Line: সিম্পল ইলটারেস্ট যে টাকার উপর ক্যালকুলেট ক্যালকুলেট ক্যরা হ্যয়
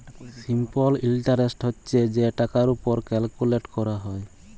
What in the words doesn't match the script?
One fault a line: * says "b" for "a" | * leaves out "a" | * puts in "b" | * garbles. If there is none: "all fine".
* puts in "হছে"
* leaves out "ক্যালকুলেট"